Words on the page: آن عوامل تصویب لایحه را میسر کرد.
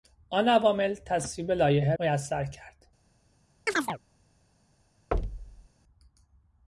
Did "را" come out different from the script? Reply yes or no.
yes